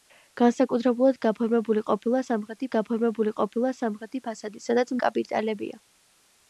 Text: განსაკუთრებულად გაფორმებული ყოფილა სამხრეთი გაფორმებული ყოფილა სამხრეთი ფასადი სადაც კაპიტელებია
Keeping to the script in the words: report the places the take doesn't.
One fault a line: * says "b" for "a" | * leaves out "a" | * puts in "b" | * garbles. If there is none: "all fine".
all fine